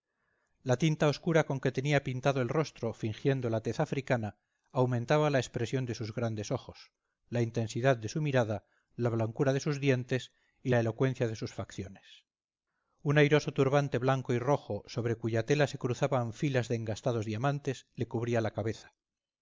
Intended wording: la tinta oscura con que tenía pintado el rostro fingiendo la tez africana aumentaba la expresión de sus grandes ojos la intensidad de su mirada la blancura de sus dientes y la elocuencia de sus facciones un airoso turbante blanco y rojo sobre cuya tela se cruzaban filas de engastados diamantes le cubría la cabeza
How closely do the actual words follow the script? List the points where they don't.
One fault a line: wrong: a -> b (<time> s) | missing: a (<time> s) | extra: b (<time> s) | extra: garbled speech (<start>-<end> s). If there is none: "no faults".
no faults